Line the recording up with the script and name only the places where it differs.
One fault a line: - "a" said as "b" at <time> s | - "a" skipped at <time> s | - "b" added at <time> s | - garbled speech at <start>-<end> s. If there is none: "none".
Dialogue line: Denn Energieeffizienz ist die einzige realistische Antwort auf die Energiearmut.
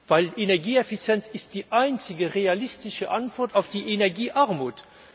none